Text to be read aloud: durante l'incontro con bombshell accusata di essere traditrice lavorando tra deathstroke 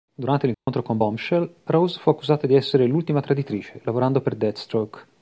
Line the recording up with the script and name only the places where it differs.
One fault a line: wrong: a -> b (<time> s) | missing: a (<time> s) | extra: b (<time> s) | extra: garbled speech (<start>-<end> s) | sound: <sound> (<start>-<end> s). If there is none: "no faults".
sound: dropout (0.5-0.7 s)
extra: rose fu (1.6 s)
extra: l'ultima (2.9 s)
wrong: tra -> per (4.2 s)